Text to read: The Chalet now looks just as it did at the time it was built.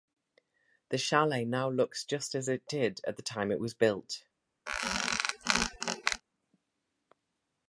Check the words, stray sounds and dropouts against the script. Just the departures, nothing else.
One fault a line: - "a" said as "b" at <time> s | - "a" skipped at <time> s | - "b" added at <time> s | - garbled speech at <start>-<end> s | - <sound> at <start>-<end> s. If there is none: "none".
- squeak at 4.7-6.2 s